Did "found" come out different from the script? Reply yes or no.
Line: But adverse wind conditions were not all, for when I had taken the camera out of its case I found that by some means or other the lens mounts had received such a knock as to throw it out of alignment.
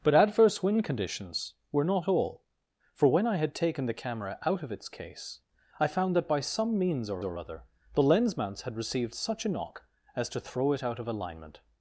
no